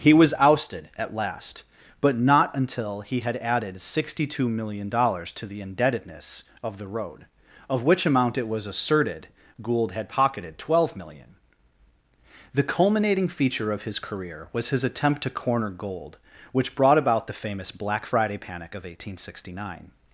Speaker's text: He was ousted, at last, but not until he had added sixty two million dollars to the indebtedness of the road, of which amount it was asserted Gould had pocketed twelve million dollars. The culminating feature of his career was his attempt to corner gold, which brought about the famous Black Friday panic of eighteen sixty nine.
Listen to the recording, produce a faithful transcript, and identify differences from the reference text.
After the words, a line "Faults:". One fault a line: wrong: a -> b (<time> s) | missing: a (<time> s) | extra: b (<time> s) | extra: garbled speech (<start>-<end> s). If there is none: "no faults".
He was ousted, at last, but not until he had added sixty two million dollars to the indebtedness of the road, of which amount it was asserted Gould had pocketed twelve million dollars. The culminating feature of his career was his attempt to corner gold, which brought about the famous Black Friday panic of eighteen sixty nine.
Faults:
no faults